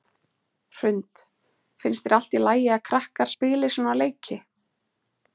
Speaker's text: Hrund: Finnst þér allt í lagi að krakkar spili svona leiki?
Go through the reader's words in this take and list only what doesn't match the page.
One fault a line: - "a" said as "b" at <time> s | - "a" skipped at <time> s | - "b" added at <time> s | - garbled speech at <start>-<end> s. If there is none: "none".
none